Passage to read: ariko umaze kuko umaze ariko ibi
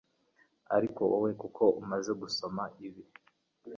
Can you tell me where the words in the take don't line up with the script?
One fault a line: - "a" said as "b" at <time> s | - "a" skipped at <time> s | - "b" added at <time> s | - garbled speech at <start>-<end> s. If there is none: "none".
- "umaze" said as "wowe" at 1.1 s
- "ariko" said as "gusoma" at 2.2 s